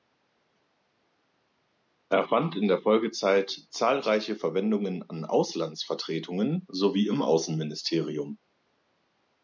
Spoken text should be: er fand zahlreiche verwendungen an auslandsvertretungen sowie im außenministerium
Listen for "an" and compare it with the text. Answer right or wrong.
right